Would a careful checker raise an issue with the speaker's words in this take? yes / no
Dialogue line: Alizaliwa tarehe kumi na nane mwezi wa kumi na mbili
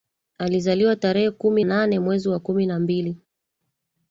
yes